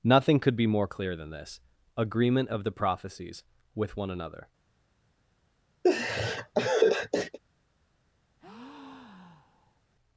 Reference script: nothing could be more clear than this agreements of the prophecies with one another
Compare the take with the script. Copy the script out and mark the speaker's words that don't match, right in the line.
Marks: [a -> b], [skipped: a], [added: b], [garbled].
nothing could be more clear than this [agreements -> agreement] of the prophecies with one another